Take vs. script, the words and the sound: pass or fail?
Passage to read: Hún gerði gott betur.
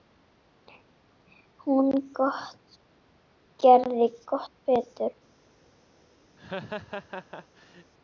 fail